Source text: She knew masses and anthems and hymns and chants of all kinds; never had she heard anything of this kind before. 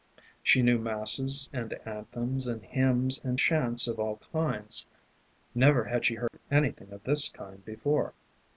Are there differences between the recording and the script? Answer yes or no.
no